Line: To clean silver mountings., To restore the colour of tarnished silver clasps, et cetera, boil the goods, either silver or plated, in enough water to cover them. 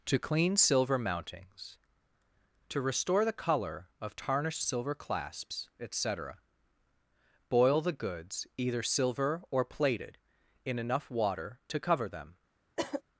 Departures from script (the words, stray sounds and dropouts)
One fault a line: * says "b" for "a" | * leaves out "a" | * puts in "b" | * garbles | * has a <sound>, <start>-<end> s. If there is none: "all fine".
* has a cough, 12.8-13.0 s